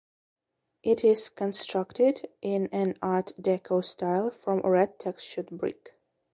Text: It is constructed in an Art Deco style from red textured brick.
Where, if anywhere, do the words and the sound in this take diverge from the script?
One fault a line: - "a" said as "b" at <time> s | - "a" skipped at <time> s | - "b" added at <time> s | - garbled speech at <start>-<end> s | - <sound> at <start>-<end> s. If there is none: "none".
none